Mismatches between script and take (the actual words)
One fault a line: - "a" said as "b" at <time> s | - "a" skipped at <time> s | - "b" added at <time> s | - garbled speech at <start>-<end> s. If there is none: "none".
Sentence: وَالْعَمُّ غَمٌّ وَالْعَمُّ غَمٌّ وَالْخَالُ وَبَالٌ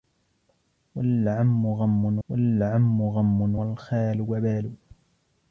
none